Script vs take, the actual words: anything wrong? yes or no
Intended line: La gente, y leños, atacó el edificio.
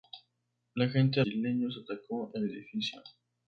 no